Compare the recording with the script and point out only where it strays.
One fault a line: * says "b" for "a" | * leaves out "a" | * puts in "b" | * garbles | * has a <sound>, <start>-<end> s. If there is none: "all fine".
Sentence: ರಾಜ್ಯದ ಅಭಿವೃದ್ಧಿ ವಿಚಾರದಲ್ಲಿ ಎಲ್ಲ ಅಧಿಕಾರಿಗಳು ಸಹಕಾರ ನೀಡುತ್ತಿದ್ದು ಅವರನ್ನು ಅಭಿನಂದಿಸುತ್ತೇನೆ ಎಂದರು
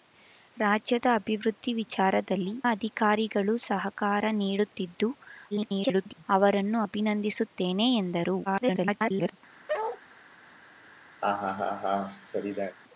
* leaves out "ಎಲ್ಲ"
* garbles
* garbles
* has a bark, 9.7-10.0 s
* has a laugh, 11.2-12.8 s